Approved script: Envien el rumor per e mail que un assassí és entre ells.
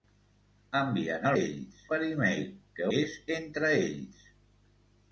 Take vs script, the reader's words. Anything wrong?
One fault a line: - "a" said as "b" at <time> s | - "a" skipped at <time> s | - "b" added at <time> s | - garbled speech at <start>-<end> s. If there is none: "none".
- "rumor" said as "ells" at 1.4 s
- "un assassí" skipped at 2.9 s